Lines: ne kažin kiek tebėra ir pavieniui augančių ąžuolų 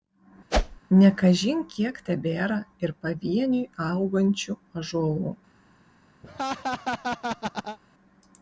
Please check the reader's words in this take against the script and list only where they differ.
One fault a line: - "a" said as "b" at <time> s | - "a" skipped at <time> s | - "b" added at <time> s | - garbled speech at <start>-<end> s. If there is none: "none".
none